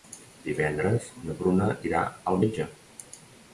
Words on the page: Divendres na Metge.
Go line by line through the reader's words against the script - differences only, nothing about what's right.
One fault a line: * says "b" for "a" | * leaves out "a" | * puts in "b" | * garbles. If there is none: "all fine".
* puts in "Bruna irà al"